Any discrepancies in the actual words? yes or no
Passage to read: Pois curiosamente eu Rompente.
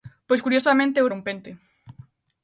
no